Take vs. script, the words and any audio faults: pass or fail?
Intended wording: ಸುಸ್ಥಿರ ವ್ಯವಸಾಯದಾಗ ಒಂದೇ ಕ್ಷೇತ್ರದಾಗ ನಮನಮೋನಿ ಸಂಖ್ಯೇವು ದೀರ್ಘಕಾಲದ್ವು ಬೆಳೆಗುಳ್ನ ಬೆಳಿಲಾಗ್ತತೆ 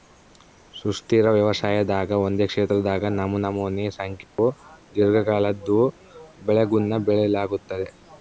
fail